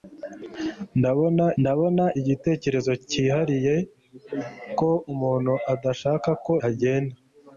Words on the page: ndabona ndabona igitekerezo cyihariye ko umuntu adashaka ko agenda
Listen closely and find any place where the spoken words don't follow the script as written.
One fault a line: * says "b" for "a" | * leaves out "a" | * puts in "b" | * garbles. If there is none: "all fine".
all fine